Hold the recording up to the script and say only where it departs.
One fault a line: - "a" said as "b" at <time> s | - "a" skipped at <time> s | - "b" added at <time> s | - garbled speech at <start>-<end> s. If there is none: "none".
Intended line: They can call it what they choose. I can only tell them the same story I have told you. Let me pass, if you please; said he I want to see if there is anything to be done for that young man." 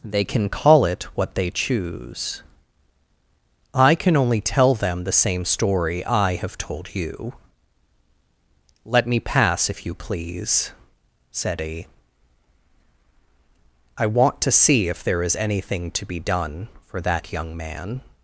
none